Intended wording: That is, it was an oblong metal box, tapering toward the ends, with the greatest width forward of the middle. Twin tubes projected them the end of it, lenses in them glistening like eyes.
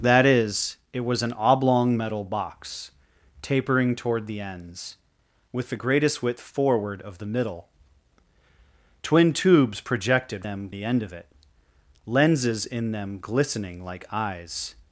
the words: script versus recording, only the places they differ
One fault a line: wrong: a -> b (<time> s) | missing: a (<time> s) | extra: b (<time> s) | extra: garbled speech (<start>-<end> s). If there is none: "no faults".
no faults